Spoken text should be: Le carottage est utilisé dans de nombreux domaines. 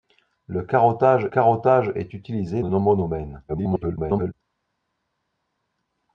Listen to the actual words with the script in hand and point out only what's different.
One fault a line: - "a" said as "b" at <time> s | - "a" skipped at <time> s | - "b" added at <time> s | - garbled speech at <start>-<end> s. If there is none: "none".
- "carottage" added at 1.3 s
- "dans" skipped at 2.6 s
- garbled speech at 3.5-4.3 s